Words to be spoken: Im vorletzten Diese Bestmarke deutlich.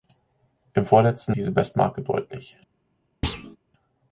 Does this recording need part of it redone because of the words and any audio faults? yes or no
yes